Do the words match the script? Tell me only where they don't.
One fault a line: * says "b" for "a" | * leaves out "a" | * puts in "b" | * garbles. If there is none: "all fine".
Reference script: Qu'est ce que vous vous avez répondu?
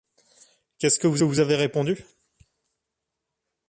all fine